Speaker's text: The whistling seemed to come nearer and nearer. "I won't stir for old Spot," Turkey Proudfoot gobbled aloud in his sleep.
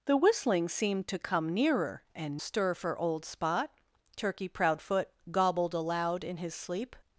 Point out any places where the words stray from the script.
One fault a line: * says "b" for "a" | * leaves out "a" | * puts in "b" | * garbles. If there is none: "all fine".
* leaves out "nearer I won't"